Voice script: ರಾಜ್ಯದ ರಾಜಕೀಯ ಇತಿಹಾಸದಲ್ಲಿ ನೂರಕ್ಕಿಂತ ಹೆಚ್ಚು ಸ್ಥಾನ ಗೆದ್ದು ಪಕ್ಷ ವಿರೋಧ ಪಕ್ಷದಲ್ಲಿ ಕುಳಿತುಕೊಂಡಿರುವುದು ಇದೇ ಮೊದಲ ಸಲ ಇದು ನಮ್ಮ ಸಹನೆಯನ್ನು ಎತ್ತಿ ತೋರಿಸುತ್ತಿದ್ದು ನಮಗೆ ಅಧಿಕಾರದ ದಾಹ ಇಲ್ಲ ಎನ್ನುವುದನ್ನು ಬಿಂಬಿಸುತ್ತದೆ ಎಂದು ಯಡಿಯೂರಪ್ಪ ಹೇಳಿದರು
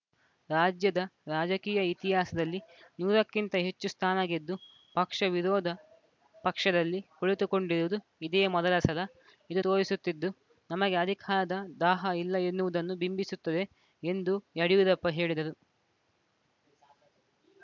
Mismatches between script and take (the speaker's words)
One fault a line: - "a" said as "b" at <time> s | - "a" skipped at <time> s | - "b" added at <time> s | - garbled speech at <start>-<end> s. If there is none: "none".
- "ನಮ್ಮ ಸಹನೆಯನ್ನು ಎತ್ತಿ" skipped at 9.6 s